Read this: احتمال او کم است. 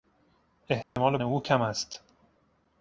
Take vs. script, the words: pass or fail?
pass